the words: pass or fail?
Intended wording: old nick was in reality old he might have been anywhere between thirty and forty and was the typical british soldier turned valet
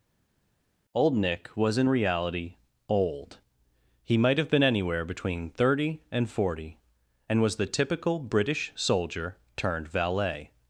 pass